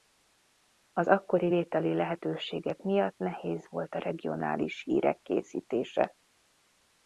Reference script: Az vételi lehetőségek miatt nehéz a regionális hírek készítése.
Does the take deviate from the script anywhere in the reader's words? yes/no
yes